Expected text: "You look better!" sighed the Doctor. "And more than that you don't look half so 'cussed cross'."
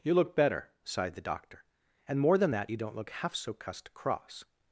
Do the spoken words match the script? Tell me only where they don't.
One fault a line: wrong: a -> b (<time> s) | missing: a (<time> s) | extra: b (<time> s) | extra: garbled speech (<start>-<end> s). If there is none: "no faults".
no faults